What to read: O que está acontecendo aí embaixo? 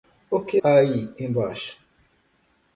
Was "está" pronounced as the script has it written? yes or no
no